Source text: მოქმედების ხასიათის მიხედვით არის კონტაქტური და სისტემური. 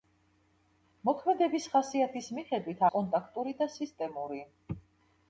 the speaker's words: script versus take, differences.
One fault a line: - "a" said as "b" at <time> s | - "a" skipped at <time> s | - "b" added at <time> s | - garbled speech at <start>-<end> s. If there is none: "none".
- "არის" skipped at 2.8 s